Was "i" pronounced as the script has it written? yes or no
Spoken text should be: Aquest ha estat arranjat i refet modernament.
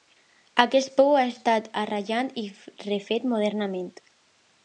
yes